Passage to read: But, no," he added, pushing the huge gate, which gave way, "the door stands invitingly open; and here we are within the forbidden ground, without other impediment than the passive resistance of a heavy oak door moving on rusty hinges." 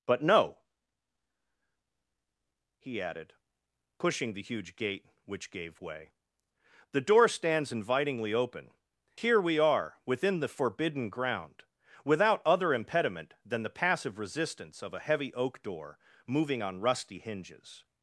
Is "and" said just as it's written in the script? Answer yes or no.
no